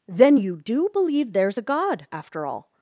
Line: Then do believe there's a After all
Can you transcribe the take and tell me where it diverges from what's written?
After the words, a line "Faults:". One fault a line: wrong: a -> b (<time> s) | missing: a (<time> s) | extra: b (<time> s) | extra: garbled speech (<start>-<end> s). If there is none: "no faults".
Then you do believe there's a God, after all
Faults:
extra: you (0.3 s)
extra: God (1.6 s)